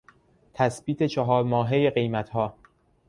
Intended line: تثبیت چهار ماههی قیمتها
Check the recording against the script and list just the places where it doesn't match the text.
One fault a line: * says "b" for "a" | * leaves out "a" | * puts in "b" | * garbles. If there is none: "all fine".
all fine